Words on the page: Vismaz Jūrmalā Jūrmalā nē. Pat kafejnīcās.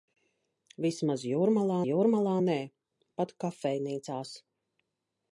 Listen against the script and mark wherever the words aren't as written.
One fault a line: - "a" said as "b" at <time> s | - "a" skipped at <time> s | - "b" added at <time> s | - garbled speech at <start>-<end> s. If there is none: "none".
none